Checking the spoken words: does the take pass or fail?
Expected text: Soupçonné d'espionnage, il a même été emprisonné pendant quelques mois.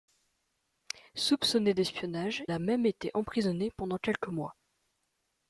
fail